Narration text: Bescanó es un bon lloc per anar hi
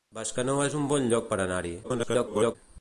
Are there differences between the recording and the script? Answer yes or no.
yes